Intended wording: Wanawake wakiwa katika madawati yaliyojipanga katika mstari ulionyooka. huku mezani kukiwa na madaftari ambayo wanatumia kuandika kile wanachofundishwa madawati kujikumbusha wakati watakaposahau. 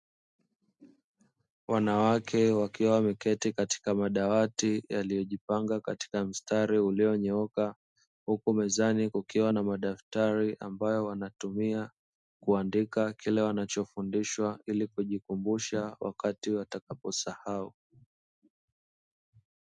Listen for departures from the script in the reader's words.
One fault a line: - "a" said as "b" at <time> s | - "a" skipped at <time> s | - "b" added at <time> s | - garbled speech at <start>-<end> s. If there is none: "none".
- "wameketi" added at 2.9 s
- "madawati" said as "ili" at 14.7 s